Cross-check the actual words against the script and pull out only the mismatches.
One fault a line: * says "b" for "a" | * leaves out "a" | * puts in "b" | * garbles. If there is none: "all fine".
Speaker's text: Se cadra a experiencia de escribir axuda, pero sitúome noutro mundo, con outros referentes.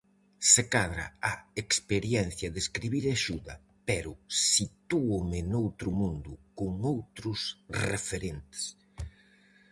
all fine